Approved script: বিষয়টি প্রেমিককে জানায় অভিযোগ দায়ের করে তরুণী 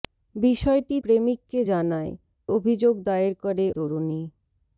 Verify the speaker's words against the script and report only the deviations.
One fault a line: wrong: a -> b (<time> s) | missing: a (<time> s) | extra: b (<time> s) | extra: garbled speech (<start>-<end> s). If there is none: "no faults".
no faults